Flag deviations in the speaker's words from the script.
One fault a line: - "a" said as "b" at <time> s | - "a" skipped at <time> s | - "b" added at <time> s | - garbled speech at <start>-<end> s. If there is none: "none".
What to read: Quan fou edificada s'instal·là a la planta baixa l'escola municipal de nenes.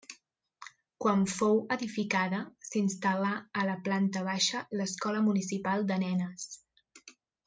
none